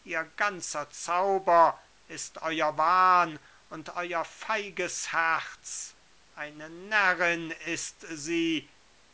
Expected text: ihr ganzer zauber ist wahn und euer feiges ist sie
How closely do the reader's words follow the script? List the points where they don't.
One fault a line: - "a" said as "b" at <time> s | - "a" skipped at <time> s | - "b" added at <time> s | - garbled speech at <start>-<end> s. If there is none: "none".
- "euer" added at 2.4 s
- "herz eine närrin" added at 5.1 s